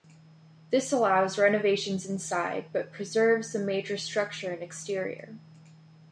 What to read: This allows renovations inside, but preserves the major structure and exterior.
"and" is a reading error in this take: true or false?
false